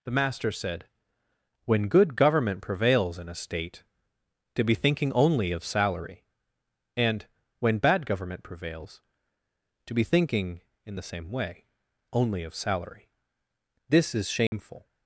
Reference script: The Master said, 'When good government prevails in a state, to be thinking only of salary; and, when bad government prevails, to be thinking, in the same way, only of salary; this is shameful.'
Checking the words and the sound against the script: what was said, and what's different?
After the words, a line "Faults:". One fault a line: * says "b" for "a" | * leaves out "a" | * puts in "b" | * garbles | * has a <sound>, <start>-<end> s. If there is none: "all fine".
The Master said, 'When good government prevails in a state, to be thinking only of salary; and, when bad government prevails, to be thinking, in the same way, only of salary; this is shameful.'
Faults:
* has a dropout, 14.5-14.5 s